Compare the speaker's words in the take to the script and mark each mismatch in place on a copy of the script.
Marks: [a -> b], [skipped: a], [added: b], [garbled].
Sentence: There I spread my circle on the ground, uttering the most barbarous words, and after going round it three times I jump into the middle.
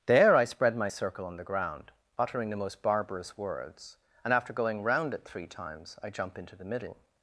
There I spread my circle on the ground, uttering the most barbarous words, and after going round it three times I jump into the middle.